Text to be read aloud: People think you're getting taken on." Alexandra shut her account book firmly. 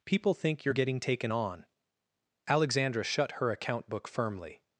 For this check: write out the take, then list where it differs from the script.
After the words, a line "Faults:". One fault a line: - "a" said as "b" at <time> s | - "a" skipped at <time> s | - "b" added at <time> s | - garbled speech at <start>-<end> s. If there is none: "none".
People think you're getting taken on." Alexandra shut her account book firmly.
Faults:
none